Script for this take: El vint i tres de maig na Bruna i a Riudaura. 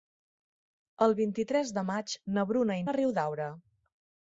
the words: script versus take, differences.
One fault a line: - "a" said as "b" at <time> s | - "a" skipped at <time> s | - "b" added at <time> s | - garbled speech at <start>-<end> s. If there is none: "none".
none